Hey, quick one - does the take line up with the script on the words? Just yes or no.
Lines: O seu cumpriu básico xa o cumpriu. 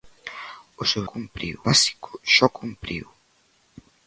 yes